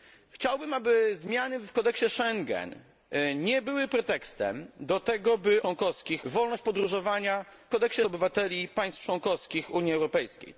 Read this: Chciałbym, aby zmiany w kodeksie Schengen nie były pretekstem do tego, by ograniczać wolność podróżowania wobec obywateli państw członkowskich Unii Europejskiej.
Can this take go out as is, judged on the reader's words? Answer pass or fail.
fail